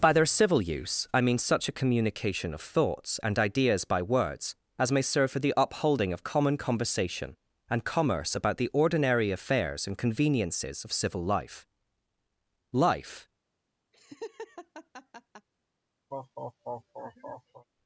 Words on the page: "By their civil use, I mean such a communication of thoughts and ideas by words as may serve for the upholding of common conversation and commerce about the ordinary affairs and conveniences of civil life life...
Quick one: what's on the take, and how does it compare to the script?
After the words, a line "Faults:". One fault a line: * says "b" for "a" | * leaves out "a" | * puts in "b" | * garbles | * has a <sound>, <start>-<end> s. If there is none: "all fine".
"By their civil use, I mean such a communication of thoughts and ideas by words as may serve for the upholding of common conversation and commerce about the ordinary affairs and conveniences of civil life life...
Faults:
* has a laugh, 13.9-15.5 s
* has a laugh, 16.1-17.7 s